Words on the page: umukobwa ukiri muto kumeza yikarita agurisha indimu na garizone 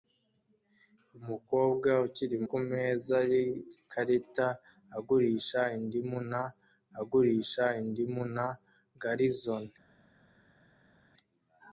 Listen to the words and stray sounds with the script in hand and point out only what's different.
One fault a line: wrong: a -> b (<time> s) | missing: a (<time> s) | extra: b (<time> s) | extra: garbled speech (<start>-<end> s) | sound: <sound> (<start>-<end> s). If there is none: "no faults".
missing: muto (2.4 s)
extra: agurisha indimu na (7.0 s)